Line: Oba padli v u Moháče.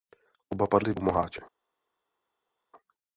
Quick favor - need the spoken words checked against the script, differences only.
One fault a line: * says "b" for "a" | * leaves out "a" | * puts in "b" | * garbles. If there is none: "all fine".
all fine